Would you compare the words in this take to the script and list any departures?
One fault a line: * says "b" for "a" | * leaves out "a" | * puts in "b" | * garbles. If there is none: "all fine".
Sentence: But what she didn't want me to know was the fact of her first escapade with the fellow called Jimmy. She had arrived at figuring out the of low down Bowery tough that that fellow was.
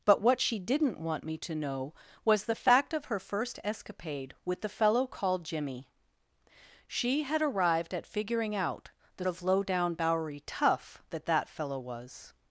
all fine